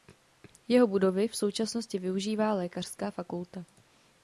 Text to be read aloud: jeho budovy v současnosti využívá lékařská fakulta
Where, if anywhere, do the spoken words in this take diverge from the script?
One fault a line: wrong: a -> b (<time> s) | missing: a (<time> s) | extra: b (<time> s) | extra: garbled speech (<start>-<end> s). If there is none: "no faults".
no faults